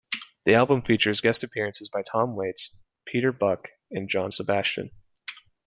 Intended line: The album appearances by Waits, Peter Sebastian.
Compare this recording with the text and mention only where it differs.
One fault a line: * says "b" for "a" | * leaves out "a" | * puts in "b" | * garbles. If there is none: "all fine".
* puts in "features guest"
* puts in "Tom"
* puts in "Buck and John"